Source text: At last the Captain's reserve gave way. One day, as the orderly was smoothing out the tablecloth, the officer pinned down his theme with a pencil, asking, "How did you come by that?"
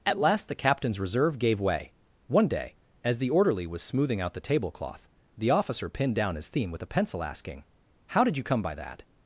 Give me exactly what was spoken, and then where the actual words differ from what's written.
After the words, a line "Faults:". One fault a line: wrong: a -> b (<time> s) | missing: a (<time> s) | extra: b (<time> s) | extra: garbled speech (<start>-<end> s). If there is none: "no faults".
At last the Captain's reserve gave way. One day, as the orderly was smoothing out the tablecloth, the officer pinned down his theme with a pencil, asking, "How did you come by that?"
Faults:
no faults